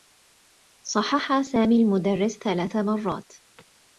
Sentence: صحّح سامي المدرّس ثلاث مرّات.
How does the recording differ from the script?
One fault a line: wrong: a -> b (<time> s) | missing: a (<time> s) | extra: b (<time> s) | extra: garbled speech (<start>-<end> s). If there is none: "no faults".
no faults